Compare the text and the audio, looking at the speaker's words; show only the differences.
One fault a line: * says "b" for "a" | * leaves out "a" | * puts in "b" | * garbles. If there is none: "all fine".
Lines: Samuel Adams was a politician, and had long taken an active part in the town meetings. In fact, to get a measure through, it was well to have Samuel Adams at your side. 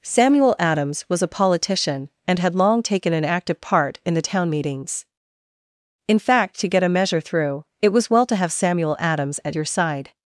all fine